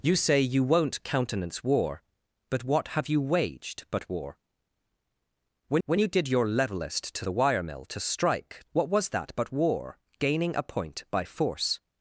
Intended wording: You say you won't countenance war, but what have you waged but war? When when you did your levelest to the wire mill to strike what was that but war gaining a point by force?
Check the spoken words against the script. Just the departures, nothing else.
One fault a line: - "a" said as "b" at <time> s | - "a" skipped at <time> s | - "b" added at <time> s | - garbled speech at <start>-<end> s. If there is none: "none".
none